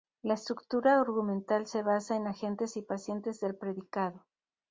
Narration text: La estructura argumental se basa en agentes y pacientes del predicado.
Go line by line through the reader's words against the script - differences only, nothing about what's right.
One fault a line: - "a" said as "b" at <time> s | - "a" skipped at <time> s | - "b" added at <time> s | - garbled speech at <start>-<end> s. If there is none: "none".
none